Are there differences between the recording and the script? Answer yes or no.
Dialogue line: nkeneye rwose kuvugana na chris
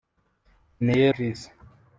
yes